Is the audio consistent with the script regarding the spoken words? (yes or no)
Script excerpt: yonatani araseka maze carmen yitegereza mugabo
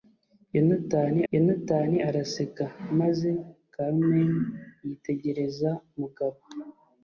no